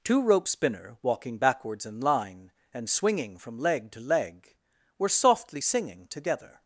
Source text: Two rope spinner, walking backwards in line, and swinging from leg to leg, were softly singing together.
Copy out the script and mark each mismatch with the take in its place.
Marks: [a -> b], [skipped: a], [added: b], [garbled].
Two rope spinner, walking backwards in line, and swinging from leg to leg, were softly singing together.